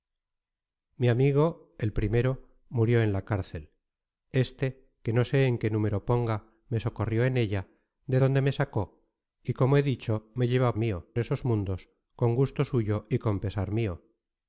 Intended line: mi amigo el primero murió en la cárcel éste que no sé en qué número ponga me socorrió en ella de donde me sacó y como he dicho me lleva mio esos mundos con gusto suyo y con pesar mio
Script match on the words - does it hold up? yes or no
yes